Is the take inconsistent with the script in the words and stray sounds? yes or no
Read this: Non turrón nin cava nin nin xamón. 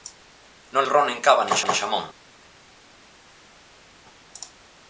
no